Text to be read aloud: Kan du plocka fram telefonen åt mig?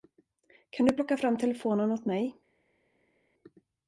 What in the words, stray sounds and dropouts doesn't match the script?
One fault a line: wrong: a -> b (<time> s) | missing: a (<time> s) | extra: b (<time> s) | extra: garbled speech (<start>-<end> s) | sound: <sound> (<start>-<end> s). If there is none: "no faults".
no faults